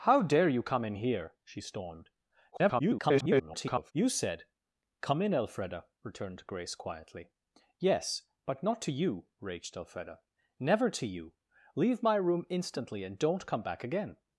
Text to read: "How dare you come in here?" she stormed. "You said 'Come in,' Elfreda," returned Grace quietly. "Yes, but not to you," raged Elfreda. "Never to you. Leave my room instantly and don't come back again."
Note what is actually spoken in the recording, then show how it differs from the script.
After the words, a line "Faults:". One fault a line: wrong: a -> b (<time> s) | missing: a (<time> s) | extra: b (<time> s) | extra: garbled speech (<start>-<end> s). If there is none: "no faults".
"How dare you come in here?" she stormed. [garbled] "You said 'Come in,' Elfreda," returned Grace quietly. "Yes, but not to you," raged Elfreda. "Never to you. Leave my room instantly and don't come back again."
Faults:
extra: garbled speech (2.5-3.9 s)